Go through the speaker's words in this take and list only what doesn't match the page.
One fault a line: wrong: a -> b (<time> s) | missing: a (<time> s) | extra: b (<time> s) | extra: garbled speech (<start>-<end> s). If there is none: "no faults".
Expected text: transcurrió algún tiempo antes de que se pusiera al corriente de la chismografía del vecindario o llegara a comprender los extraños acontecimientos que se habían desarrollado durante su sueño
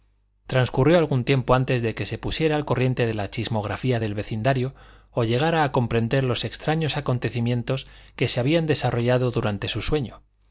no faults